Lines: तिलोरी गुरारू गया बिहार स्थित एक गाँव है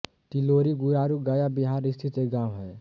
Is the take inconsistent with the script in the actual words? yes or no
no